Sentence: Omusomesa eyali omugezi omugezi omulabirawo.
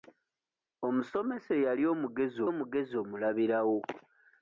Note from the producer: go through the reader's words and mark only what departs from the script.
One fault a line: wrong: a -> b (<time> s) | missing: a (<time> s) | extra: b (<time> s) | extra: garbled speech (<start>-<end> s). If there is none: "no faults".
no faults